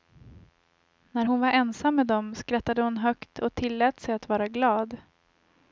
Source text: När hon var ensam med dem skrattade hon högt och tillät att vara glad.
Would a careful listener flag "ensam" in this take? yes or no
no